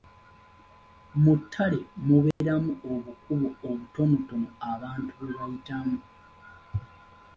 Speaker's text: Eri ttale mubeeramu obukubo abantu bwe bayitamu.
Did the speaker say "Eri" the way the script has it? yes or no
no